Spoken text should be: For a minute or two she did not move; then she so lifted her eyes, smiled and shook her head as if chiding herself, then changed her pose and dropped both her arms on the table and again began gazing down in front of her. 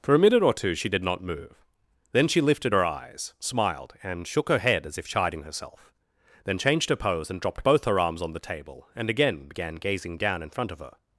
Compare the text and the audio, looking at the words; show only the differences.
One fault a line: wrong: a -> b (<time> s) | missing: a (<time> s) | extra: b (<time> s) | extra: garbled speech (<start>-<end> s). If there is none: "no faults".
missing: so (2.4 s)